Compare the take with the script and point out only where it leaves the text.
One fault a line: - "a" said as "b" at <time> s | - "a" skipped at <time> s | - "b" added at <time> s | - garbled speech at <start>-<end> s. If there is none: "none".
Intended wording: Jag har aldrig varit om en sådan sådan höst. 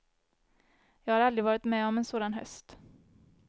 - "med" added at 1.6 s
- "sådan" skipped at 2.3 s